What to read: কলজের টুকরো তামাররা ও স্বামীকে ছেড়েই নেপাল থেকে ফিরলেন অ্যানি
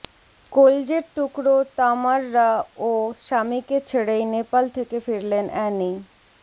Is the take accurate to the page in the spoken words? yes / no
yes